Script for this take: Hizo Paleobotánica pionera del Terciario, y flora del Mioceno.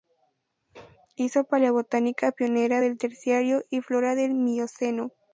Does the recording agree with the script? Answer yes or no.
yes